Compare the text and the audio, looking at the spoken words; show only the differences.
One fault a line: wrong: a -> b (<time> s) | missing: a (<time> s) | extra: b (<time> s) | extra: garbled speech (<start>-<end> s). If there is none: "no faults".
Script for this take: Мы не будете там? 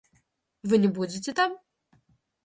wrong: Мы -> Вы (0.6 s)